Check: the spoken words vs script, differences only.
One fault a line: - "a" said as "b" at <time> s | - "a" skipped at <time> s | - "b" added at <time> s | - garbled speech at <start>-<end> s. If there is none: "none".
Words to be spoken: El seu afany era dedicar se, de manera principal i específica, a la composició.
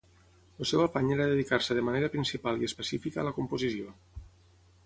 none